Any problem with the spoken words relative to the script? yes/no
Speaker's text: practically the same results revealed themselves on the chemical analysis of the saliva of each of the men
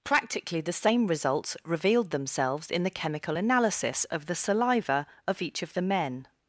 yes